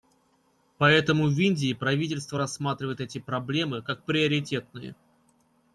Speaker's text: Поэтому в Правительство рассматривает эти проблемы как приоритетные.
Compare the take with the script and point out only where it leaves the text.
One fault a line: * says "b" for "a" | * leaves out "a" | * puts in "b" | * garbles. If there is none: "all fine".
* puts in "Индии"